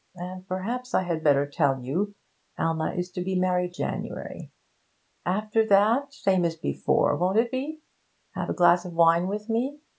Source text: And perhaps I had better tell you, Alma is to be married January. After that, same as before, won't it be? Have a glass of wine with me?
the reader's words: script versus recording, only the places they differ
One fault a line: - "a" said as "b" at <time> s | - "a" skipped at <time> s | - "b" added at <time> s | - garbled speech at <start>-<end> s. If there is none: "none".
none